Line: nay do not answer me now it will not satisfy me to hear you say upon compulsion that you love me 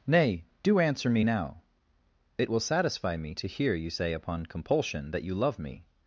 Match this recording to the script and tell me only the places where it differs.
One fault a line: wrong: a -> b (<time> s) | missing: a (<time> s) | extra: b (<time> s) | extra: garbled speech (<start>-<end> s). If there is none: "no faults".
missing: not (0.8 s)
missing: not (2.6 s)